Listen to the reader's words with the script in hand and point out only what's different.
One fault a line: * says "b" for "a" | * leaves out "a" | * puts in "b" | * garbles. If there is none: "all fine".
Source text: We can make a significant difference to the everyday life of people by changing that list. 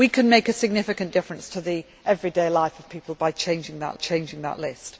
* puts in "changing that"